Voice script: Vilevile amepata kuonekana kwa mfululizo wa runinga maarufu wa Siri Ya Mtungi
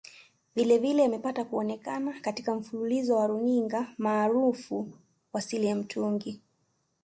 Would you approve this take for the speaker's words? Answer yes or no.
no